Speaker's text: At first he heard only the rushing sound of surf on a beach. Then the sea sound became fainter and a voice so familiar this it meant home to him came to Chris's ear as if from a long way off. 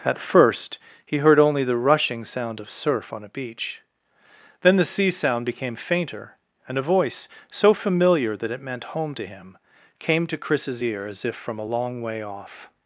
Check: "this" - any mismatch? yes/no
yes